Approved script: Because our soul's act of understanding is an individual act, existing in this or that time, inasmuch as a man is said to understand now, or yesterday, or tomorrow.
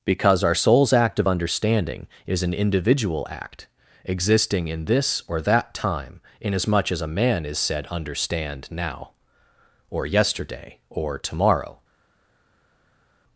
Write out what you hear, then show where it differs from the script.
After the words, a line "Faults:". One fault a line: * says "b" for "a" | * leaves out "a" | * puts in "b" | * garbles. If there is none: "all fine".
Because our soul's act of understanding is an individual act, existing in this or that time, inasmuch as a man is said understand now, or yesterday, or tomorrow.
Faults:
* leaves out "to"